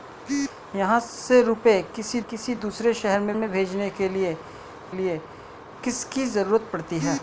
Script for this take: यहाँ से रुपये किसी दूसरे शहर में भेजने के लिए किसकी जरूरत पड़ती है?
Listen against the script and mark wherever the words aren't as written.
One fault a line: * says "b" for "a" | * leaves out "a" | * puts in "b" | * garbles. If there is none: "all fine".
* puts in "किसी"
* puts in "में"
* puts in "लिए"